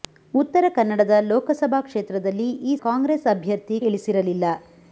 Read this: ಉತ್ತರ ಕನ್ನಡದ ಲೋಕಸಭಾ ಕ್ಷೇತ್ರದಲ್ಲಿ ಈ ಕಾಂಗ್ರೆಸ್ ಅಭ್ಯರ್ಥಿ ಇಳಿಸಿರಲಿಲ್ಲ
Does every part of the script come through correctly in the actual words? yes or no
yes